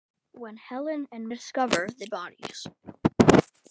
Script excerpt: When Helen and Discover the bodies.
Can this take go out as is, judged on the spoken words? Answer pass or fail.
pass